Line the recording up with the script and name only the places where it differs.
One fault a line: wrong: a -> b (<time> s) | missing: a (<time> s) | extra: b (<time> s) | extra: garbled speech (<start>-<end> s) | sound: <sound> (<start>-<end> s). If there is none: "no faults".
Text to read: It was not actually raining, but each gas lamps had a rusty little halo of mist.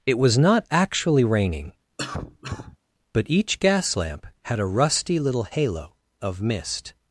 sound: cough (2.0-2.8 s)
wrong: lamps -> lamp (4.0 s)